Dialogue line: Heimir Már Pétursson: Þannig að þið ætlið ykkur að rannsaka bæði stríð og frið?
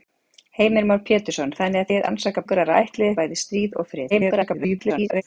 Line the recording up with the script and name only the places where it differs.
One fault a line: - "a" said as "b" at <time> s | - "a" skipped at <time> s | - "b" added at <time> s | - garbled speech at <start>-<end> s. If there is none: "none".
- "ætlið" said as "rannsaka" at 2.0 s
- "rannsaka" said as "ætlið" at 2.8 s
- garbled speech at 4.1-5.2 s